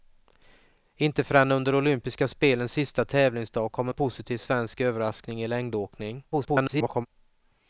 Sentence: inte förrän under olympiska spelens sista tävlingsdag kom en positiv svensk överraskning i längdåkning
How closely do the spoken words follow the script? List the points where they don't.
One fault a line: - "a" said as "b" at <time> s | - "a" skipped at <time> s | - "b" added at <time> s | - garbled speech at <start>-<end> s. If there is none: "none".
- garbled speech at 6.3-7.1 s